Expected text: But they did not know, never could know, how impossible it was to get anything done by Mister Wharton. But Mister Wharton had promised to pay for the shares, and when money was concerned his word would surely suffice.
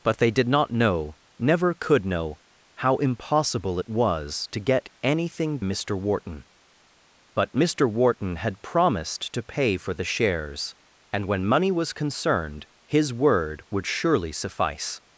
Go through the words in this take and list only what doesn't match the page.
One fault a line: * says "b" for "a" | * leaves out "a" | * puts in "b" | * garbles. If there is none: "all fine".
* leaves out "done by"